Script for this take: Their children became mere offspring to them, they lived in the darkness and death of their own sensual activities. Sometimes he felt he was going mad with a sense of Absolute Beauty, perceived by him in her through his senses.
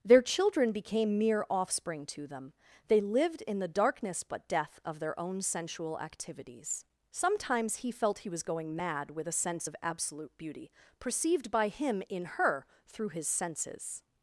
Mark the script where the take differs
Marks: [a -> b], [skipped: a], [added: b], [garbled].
Their children became mere offspring to them, they lived in the darkness [and -> but] death of their own sensual activities. Sometimes he felt he was going mad with a sense of Absolute Beauty, perceived by him in her through his senses.